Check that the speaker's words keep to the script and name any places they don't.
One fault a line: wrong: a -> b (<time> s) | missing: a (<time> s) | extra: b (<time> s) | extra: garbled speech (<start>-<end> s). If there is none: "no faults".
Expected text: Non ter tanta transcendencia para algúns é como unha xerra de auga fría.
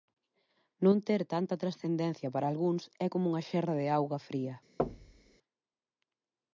no faults